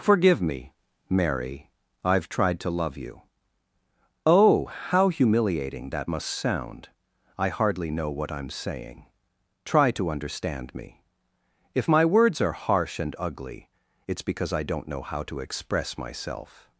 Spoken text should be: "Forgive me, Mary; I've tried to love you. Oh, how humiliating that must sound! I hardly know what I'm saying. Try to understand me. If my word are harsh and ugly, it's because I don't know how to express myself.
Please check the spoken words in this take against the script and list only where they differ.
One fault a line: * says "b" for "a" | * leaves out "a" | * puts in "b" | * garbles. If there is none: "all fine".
* says "words" for "word"